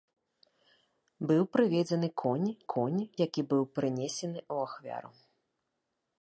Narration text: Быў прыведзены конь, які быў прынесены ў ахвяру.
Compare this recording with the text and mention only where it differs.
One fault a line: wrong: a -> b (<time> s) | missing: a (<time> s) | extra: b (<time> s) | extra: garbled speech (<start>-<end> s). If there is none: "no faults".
extra: конь (2.7 s)